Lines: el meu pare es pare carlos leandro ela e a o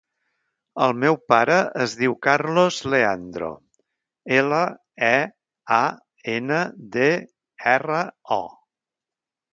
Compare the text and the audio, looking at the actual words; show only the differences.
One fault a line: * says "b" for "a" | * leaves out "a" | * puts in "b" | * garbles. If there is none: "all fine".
* says "diu" for "pare"
* puts in "ena de erra"